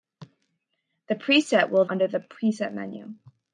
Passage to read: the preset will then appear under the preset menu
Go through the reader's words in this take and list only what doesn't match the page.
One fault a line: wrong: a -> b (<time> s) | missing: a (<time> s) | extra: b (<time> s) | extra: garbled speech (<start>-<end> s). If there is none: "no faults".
missing: then appear (1.9 s)